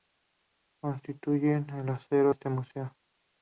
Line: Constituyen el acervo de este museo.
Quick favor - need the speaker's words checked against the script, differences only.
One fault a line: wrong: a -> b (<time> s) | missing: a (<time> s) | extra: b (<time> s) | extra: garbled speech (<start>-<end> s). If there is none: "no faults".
missing: de (2.3 s)